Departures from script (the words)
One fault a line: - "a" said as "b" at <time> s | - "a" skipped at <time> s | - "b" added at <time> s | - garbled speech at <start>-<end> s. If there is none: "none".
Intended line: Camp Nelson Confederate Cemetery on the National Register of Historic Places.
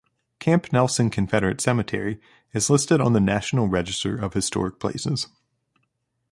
- "is listed" added at 2.5 s